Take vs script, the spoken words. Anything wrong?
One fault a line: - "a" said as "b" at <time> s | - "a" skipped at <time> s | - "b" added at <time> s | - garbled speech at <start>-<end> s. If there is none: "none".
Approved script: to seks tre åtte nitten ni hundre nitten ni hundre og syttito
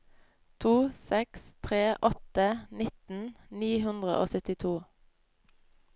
- "nitten ni hundre" skipped at 4.2 s